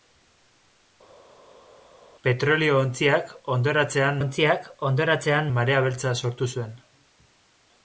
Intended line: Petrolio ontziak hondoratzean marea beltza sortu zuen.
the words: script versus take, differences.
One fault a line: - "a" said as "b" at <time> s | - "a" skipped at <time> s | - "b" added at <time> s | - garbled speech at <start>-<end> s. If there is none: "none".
- "ontziak hondoratzean" added at 4.2 s